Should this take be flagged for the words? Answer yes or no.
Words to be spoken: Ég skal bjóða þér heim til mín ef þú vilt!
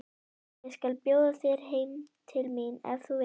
no